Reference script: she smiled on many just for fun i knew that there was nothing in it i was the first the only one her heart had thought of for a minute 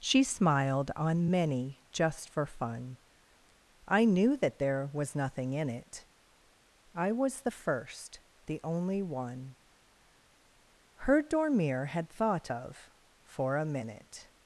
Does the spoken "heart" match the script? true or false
false